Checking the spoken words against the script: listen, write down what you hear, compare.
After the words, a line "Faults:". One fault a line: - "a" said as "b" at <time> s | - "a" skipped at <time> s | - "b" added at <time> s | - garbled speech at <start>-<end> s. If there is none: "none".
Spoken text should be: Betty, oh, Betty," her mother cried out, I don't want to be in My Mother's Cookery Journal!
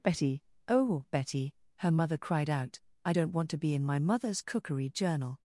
Betty, oh, Betty," her mother cried out, I don't want to be in My Mother's Cookery Journal!
Faults:
none